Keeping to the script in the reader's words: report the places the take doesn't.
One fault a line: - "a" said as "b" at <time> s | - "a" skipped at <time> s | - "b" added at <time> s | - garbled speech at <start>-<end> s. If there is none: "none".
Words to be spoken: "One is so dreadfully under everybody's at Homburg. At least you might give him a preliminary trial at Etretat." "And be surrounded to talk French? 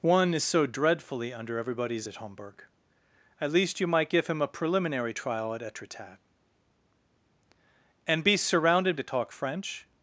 none